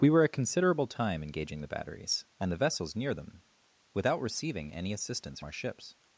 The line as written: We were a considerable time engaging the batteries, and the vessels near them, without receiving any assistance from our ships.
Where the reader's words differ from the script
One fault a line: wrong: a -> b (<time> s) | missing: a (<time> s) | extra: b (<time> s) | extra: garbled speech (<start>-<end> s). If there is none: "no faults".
missing: from (5.4 s)